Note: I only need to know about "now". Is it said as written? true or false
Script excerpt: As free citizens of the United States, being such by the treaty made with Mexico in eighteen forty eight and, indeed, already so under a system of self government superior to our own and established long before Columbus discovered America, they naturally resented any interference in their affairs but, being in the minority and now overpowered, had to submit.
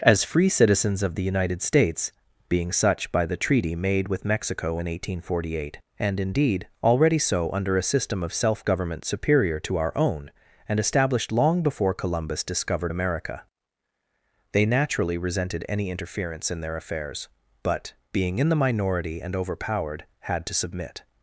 false